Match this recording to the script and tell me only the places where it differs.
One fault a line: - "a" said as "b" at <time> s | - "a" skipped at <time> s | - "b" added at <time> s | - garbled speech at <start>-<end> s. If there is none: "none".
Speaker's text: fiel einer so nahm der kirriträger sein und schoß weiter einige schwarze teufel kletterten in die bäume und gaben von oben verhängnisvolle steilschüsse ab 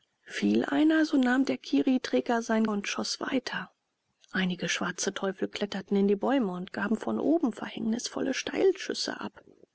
none